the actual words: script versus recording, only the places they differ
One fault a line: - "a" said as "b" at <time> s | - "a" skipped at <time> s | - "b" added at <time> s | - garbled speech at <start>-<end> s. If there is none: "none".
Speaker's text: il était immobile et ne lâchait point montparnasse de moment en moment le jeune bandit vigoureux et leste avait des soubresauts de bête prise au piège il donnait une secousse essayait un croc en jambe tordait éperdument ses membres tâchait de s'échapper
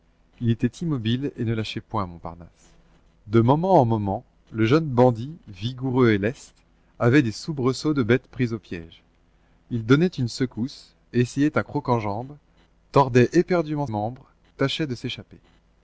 - "ses" skipped at 13.8 s